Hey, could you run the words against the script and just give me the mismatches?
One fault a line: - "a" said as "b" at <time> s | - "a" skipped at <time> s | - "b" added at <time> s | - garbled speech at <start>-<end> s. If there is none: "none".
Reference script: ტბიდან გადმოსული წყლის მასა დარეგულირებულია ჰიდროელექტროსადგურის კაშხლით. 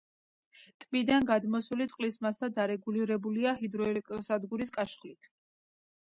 none